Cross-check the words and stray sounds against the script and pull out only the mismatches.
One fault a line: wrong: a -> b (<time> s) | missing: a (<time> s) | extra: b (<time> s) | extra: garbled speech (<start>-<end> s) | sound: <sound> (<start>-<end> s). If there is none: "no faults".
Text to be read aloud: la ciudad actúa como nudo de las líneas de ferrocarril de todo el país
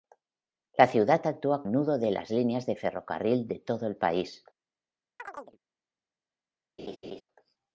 missing: como (1.6 s)
sound: chirp (5.2-5.6 s)
sound: laugh (6.8-7.2 s)